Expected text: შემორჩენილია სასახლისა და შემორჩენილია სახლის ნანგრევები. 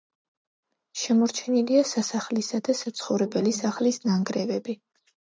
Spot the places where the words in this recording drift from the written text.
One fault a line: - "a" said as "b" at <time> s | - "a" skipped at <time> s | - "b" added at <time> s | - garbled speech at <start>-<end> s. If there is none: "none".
- "შემორჩენილია" said as "საცხოვრებელი" at 2.8 s